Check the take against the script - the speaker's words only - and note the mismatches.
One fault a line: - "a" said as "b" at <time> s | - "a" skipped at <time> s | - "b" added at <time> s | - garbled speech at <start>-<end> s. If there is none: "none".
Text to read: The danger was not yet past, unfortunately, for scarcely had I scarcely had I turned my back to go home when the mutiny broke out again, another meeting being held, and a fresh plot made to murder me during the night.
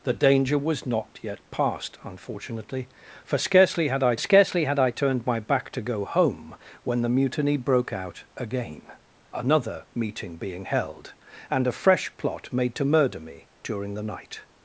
none